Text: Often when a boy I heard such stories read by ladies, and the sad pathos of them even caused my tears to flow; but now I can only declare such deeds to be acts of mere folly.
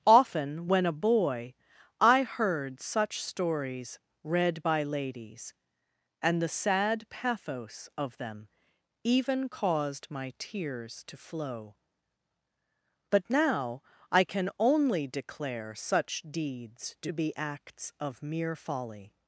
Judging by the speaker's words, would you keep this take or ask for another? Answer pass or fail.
pass